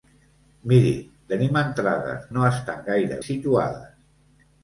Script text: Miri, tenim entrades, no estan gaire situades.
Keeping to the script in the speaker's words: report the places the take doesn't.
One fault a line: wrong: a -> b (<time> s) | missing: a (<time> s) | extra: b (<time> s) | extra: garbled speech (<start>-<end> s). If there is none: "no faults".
no faults